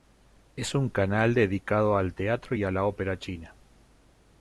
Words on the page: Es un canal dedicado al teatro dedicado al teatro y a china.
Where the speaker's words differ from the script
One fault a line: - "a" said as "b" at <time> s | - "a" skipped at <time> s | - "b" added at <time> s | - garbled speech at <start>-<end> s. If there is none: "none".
- "dedicado al teatro y a" said as "y a la ópera" at 2.5 s